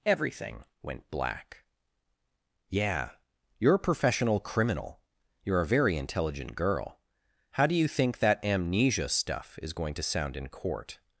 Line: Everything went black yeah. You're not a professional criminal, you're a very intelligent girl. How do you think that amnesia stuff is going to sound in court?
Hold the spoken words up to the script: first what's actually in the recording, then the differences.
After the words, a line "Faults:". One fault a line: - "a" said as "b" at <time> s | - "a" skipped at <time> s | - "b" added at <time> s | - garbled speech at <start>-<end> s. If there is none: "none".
Everything went black yeah. You're a professional criminal, you're a very intelligent girl. How do you think that amnesia stuff is going to sound in court?
Faults:
- "not" skipped at 3.8 s